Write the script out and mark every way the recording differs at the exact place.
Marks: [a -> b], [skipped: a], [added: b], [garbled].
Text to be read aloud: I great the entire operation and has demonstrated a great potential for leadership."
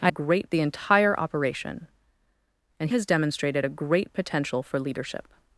I great the entire operation and has demonstrated a great potential for leadership."